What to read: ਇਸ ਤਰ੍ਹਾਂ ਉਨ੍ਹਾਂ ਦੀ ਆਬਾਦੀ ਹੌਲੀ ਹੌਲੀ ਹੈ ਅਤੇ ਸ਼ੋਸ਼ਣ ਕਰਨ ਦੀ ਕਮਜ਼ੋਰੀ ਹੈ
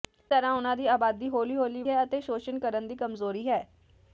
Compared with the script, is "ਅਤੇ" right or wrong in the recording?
right